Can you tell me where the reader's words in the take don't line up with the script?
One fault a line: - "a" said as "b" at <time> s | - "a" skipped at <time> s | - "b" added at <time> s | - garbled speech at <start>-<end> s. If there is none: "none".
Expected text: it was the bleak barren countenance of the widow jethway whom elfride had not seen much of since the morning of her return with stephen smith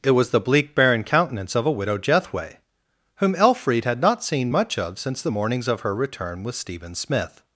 - "the" said as "a" at 1.6 s
- "morning" said as "mornings" at 5.3 s